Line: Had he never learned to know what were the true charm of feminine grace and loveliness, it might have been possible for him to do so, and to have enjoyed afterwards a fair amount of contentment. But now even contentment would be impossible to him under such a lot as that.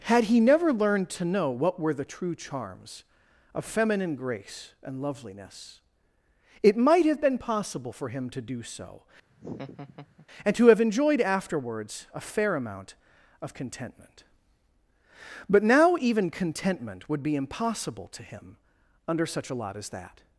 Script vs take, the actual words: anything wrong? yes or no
yes